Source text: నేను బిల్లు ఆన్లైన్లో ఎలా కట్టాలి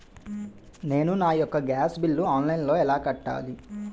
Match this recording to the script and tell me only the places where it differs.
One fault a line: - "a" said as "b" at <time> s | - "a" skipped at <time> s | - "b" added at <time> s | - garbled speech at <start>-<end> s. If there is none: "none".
- "నా యెక్క గ్యాస్" added at 1.1 s